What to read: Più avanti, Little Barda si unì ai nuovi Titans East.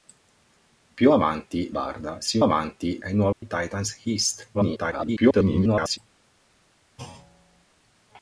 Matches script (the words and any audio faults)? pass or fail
fail